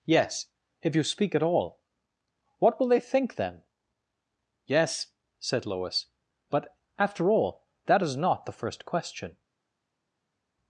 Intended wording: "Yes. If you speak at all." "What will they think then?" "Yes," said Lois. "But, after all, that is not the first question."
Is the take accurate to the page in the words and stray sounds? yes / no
yes